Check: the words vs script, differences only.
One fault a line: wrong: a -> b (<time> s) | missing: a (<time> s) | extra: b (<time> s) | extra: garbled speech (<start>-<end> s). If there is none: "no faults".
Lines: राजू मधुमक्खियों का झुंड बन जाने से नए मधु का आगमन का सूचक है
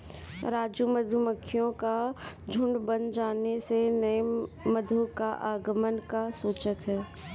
no faults